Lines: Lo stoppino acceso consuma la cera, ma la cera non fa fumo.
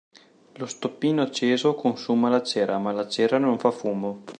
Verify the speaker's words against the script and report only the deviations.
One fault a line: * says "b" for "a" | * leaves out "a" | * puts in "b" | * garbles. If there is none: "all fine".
all fine